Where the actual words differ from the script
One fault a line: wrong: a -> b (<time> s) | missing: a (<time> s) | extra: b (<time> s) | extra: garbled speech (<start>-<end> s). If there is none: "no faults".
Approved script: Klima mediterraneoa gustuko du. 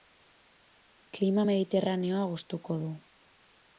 no faults